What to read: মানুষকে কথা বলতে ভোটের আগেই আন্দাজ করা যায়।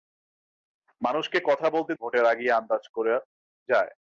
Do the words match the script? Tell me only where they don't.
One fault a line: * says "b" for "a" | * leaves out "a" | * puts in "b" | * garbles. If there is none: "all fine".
all fine